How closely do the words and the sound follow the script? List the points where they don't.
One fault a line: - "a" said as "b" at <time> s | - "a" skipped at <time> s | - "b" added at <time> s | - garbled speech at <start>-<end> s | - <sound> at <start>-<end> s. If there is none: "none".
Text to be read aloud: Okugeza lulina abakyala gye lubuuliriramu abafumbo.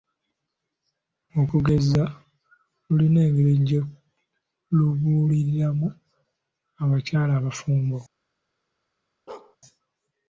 - "abakyala" said as "engeri" at 3.3 s
- "abakyala" added at 6.8 s
- bark at 9.3-9.6 s